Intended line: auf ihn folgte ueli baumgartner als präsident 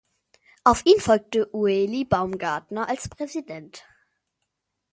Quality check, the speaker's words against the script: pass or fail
pass